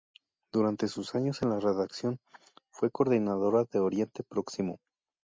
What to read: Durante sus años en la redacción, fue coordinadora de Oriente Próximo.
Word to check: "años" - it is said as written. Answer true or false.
true